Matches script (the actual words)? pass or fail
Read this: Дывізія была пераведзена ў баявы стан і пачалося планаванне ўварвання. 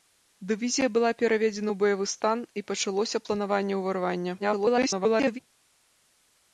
fail